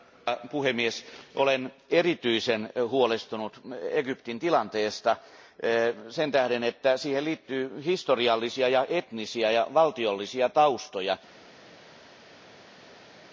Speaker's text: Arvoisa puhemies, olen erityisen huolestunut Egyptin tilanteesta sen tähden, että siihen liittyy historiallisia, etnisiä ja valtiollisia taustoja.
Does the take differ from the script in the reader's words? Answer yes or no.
no